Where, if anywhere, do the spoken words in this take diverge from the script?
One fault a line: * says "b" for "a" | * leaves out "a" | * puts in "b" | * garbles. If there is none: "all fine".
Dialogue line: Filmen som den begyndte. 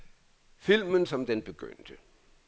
all fine